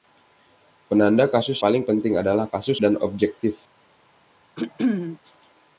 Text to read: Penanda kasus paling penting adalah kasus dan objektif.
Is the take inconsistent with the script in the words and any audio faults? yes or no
yes